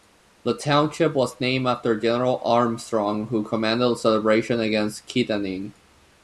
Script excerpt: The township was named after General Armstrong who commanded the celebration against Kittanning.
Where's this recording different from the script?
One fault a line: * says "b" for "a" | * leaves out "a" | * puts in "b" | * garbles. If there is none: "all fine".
all fine